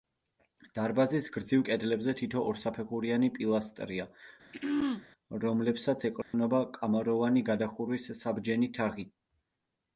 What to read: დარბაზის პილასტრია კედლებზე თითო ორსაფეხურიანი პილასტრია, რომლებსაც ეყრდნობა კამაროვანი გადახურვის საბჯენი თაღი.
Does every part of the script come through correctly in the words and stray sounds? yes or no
no